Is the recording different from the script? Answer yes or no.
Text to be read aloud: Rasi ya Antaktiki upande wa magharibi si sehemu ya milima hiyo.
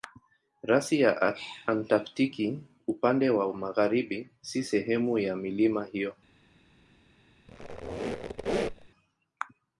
no